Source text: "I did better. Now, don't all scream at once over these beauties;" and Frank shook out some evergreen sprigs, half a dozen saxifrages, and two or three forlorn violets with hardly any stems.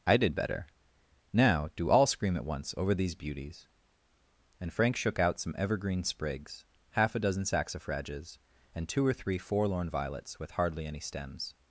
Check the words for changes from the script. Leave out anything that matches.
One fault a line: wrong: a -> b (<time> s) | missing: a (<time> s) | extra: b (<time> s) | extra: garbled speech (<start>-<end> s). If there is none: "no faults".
wrong: don't -> do (1.8 s)